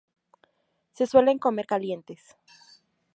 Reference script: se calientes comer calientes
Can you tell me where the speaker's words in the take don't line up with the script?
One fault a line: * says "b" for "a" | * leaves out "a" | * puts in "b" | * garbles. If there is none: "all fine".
* says "suelen" for "calientes"